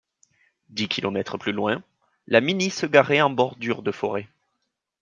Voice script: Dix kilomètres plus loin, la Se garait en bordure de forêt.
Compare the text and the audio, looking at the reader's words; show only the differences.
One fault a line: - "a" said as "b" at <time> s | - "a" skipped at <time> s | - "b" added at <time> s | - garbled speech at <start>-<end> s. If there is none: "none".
- "Mini" added at 2.4 s